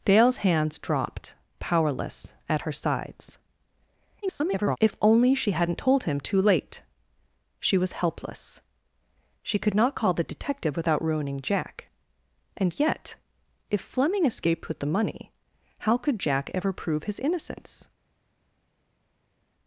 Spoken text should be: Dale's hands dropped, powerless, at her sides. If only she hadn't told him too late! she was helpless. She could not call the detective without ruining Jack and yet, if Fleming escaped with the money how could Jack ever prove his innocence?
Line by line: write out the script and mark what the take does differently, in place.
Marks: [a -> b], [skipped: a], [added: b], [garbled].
Dale's hands dropped, powerless, at her sides. [garbled] If only she hadn't told him too late! she was helpless. She could not call the detective without ruining Jack and yet, if Fleming escaped with the money how could Jack ever prove his innocence?